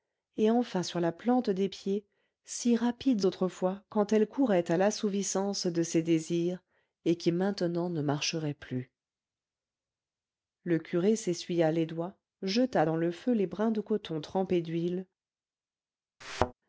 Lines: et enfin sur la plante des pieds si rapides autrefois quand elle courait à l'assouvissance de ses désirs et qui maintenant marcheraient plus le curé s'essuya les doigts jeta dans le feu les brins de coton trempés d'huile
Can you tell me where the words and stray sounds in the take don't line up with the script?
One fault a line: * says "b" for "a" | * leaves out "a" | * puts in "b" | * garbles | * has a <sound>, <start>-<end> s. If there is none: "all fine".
* puts in "ne"
* has a thud, 16.2-16.5 s